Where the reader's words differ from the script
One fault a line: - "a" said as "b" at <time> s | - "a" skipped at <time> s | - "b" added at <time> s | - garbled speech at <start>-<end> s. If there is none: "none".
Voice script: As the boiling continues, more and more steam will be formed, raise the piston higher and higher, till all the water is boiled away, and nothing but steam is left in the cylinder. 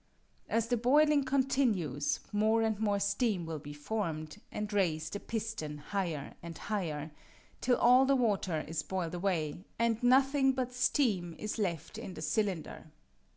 - "and" added at 4.5 s